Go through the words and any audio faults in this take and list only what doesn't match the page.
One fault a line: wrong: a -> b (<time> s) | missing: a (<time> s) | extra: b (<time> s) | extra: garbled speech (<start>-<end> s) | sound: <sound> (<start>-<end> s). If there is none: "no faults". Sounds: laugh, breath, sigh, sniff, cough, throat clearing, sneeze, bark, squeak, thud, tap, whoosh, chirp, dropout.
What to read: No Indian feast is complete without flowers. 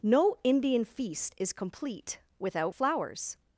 no faults